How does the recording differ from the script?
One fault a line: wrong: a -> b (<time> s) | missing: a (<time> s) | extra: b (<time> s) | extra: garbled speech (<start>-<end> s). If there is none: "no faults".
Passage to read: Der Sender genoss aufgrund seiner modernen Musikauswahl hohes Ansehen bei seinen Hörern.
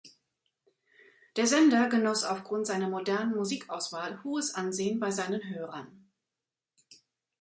no faults